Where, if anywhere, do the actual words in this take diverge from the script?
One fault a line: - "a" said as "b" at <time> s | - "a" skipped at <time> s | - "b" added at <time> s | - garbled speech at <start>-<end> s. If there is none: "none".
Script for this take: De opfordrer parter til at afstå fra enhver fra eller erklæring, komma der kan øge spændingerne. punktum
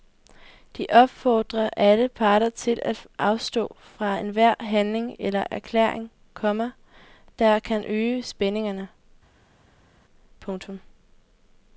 - "alle" added at 1.8 s
- "fra" said as "handling" at 4.6 s